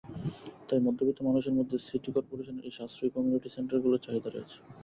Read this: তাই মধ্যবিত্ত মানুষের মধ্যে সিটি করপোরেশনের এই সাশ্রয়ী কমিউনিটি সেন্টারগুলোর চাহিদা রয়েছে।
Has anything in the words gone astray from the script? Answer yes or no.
no